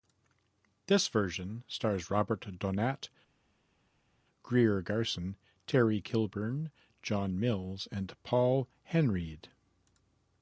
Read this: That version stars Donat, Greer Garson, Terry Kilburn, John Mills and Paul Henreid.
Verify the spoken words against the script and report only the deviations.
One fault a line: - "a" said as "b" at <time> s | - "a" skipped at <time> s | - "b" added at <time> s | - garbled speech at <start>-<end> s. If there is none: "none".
- "That" said as "This" at 0.9 s
- "Robert" added at 2.1 s